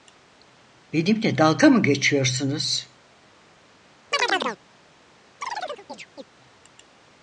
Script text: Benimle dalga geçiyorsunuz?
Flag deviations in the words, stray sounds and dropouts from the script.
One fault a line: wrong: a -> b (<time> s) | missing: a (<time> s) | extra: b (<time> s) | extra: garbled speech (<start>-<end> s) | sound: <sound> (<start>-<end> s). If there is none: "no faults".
extra: mı (1.7 s)
sound: chirp (4.1-4.6 s)
sound: chirp (5.4-6.2 s)